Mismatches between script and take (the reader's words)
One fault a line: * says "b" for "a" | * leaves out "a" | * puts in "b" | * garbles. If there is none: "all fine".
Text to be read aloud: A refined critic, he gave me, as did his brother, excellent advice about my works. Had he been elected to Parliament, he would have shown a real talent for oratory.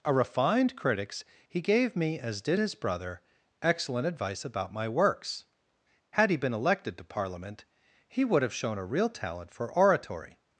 * says "critics" for "critic"